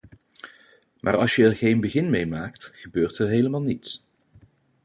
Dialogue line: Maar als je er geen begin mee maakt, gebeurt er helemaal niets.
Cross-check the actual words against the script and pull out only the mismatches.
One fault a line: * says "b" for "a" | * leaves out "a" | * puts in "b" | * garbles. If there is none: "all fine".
all fine